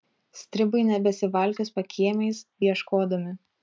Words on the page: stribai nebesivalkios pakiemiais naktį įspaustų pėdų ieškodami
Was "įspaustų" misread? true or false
true